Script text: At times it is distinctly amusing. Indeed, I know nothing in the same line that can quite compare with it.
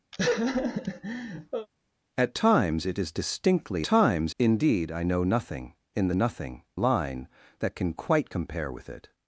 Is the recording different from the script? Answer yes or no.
yes